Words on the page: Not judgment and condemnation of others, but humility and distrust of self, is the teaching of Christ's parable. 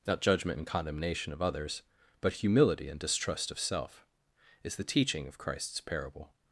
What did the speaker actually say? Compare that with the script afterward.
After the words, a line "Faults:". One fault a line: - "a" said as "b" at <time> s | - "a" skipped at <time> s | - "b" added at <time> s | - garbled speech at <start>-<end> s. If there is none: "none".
Not judgment and condemnation of others, but humility and distrust of self, is the teaching of Christ's parable.
Faults:
none